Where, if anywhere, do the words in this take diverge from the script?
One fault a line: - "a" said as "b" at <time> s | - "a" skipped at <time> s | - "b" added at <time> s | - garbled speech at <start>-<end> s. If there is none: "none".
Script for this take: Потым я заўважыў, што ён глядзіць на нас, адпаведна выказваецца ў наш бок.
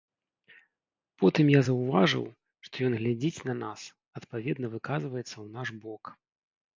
none